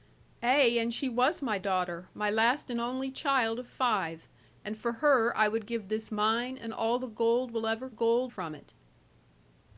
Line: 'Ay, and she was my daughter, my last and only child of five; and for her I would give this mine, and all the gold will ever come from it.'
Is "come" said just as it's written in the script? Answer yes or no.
no